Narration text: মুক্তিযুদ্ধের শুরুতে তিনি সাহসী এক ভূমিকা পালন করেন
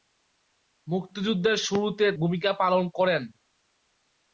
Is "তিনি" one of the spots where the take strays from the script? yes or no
yes